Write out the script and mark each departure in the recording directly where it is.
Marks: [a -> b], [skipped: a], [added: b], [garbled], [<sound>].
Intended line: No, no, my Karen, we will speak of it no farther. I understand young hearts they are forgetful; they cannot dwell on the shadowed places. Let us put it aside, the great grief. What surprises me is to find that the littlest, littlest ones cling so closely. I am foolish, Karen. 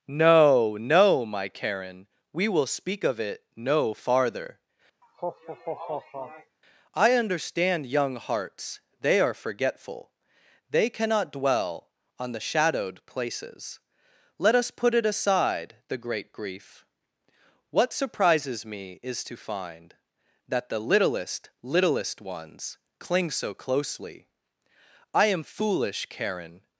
No, no, my Karen, we will speak of it no farther. [laugh] I understand young hearts they are forgetful; they cannot dwell on the shadowed places. Let us put it aside, the great grief. What surprises me is to find that the littlest, littlest ones cling so closely. I am foolish, Karen.